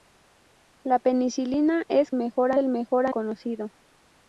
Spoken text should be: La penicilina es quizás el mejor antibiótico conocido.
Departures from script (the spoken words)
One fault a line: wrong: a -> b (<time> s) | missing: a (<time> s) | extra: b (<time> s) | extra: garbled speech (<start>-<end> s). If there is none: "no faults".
wrong: quizás -> mejor (2.1 s)
missing: antibiótico (3.1 s)